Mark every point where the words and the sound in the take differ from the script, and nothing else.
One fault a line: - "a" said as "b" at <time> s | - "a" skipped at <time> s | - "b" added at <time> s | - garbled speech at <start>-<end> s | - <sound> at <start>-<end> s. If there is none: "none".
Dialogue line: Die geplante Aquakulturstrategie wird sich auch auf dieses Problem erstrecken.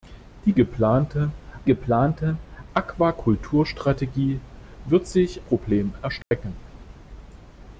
- "geplante" added at 1.6 s
- "auch auf dieses" skipped at 5.4 s
- dropout at 6.2-6.3 s